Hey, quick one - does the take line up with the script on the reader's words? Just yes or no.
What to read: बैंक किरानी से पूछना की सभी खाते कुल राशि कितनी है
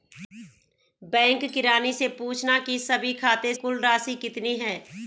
yes